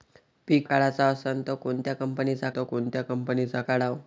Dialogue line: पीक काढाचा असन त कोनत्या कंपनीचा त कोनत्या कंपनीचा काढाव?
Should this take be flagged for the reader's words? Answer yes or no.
no